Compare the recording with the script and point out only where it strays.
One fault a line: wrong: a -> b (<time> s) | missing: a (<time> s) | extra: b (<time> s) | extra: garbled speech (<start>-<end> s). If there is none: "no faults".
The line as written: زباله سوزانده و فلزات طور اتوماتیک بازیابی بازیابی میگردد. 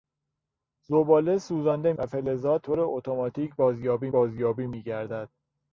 no faults